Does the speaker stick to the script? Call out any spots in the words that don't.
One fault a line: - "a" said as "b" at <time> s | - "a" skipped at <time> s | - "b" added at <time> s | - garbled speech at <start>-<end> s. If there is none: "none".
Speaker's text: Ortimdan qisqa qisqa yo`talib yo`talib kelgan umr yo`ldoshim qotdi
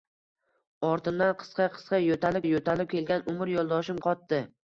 none